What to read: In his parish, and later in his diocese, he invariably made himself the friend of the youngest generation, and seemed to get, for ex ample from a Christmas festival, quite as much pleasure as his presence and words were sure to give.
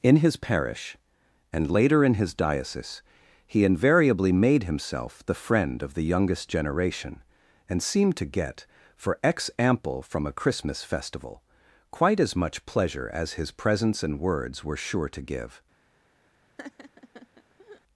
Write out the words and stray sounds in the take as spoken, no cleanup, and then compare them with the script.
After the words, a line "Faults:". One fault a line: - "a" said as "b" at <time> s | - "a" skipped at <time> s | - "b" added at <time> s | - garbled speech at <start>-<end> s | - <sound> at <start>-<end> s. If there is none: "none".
In his parish, and later in his diocese, he invariably made himself the friend of the youngest generation, and seemed to get, for ex ample from a Christmas festival, quite as much pleasure as his presence and words were sure to give.
Faults:
- laugh at 16.6-17.8 s